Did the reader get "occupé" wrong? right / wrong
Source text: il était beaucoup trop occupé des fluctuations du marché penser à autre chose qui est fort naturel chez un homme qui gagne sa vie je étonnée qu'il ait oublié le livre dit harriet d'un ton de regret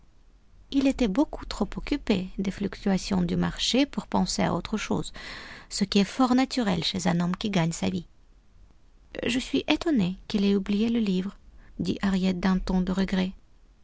right